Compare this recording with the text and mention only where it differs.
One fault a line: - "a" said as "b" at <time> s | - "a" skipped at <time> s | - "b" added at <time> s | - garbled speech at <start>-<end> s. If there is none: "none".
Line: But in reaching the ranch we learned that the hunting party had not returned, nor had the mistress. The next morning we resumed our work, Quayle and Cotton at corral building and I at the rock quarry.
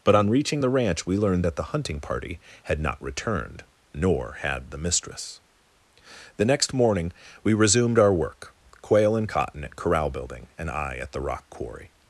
- "in" said as "on" at 0.1 s